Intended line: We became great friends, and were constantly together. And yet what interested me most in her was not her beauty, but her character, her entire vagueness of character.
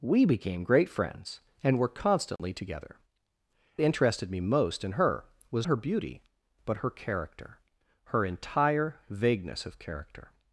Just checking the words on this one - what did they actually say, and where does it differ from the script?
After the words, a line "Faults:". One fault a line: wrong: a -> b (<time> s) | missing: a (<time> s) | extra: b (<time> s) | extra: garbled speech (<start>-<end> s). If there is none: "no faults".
We became great friends, and were constantly together. Interested me most in her was her beauty, but her character, her entire vagueness of character.
Faults:
missing: And yet what (3.0 s)
missing: not (5.7 s)